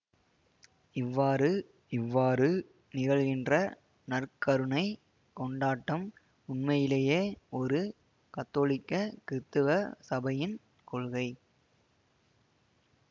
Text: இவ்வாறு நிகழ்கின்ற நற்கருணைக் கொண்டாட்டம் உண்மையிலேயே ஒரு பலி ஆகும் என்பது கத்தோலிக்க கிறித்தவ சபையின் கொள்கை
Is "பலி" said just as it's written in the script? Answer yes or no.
no